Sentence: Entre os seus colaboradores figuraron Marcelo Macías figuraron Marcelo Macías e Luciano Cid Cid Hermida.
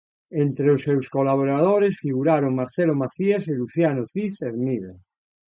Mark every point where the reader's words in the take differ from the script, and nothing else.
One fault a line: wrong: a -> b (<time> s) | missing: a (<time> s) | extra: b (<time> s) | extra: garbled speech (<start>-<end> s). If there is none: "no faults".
missing: figuraron Marcelo Macías (3.4 s)
missing: Cid (4.3 s)